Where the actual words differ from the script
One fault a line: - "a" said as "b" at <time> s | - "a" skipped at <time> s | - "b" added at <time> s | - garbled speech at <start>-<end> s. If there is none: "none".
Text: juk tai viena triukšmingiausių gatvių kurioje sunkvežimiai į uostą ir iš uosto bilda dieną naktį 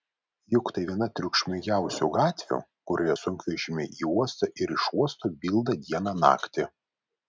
none